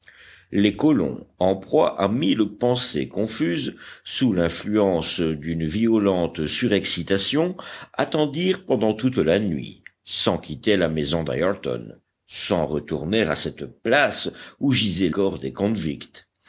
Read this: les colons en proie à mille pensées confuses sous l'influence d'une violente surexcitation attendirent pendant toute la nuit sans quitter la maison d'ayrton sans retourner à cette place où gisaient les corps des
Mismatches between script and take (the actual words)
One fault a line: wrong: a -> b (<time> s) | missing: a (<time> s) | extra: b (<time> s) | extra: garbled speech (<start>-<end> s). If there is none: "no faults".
missing: les (15.1 s)